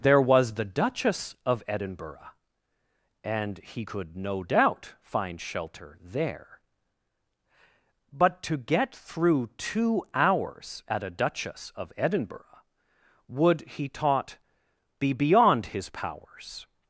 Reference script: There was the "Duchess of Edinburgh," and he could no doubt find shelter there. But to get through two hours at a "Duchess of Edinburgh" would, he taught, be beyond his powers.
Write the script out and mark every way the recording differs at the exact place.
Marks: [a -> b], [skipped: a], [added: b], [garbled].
There was the "Duchess of Edinburgh," and he could no doubt find shelter there. But to get through two hours at a "Duchess of Edinburgh" would, he taught, be beyond his powers.